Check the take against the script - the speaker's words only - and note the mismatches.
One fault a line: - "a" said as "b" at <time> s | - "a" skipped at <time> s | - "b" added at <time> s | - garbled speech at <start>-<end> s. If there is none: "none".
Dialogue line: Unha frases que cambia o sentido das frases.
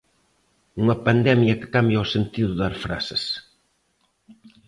- "frases" said as "pandemia" at 1.1 s